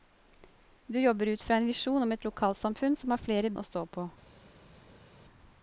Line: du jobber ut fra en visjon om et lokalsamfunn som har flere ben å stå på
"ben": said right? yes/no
no